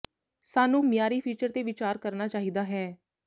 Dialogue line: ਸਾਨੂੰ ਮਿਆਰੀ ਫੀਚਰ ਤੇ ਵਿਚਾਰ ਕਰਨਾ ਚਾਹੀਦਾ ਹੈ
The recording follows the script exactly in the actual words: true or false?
true